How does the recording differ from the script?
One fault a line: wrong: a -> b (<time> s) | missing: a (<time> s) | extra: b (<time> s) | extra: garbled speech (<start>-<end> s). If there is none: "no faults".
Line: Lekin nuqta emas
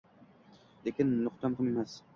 extra: muhim (1.5 s)